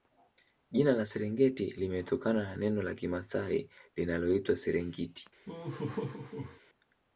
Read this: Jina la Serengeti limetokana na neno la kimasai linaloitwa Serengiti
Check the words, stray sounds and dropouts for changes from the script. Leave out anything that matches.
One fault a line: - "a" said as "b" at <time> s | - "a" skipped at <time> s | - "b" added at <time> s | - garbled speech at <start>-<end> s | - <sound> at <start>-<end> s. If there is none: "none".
- laugh at 5.5-6.6 s